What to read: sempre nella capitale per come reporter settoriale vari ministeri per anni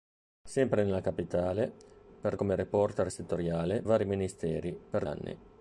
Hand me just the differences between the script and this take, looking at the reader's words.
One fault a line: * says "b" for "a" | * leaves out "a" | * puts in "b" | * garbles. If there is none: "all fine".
all fine